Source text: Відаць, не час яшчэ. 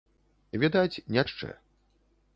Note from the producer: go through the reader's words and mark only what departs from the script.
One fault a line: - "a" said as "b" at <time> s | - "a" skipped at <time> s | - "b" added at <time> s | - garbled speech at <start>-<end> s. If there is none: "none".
- "час" skipped at 1.2 s